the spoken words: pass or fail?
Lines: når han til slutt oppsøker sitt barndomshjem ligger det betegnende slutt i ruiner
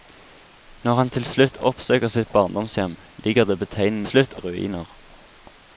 pass